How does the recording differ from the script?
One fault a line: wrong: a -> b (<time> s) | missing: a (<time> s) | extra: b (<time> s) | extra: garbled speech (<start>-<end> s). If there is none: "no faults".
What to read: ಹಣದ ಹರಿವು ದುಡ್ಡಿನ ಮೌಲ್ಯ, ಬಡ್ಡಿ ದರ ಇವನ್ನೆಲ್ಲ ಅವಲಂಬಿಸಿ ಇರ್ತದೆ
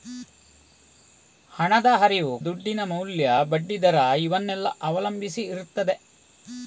no faults